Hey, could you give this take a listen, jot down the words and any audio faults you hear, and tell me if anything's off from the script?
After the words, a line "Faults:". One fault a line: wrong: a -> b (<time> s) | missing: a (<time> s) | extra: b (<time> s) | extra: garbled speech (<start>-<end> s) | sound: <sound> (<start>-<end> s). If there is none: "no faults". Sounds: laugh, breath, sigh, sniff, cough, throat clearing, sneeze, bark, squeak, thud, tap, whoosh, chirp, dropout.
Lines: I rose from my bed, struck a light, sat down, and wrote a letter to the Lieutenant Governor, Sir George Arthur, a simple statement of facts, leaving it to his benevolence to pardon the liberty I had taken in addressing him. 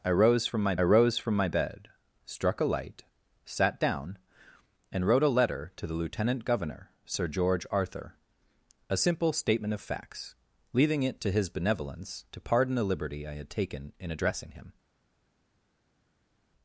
I rose from my rose from my bed, struck a light, sat down, and wrote a letter to the Lieutenant Governor, Sir George Arthur, a simple statement of facts, leaving it to his benevolence to pardon the liberty I had taken in addressing him.
Faults:
extra: rose from my (0.8 s)